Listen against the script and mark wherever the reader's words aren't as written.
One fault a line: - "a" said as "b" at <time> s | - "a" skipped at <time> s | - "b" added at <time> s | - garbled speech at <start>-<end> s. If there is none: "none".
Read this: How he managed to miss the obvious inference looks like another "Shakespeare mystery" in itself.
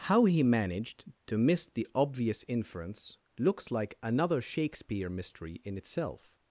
none